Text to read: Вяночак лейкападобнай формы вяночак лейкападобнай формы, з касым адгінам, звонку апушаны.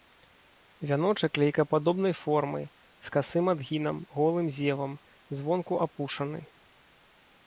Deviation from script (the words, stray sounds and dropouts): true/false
true